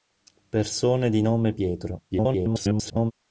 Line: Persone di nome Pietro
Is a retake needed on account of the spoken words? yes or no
yes